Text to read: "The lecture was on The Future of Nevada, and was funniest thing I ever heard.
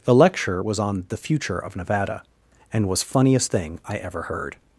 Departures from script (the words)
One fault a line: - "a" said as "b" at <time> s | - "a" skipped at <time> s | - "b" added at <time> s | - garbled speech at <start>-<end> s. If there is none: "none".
none